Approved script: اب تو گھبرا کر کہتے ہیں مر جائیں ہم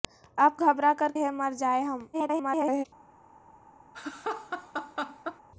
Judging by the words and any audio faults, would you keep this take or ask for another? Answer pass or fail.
fail